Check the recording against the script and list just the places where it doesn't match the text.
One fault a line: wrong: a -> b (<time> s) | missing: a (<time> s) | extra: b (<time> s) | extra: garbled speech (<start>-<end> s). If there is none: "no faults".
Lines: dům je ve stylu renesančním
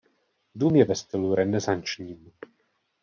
no faults